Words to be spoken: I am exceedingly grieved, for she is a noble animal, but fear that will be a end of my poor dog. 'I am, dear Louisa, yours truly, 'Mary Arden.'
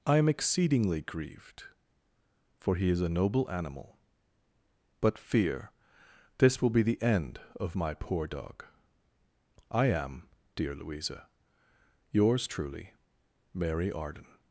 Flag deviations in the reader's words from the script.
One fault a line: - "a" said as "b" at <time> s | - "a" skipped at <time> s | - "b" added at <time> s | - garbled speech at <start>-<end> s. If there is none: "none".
- "she" said as "he" at 2.8 s
- "that" said as "this" at 6.4 s
- "a" said as "the" at 6.8 s